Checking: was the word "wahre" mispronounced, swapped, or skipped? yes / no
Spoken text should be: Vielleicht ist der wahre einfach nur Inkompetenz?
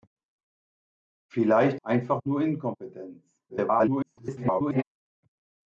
yes